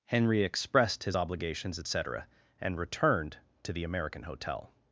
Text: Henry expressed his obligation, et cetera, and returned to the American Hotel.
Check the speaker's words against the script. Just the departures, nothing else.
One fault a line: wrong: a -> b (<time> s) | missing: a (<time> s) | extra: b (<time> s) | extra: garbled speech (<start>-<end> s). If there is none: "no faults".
wrong: obligation -> obligations (1.1 s)